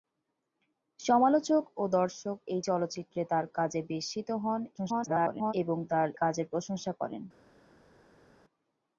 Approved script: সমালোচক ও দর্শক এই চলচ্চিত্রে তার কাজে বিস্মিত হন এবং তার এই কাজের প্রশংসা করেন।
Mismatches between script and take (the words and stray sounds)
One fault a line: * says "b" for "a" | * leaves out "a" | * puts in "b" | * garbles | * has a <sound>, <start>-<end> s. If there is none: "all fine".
* garbles
* leaves out "এই"